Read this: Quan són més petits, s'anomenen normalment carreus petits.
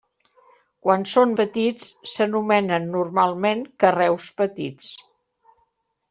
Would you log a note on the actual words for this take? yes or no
yes